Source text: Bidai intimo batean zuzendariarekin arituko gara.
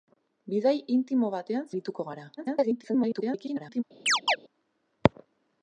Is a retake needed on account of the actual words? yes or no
yes